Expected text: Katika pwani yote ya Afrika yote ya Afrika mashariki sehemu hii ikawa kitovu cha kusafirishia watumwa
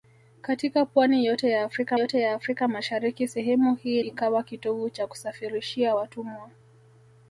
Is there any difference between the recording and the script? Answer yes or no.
no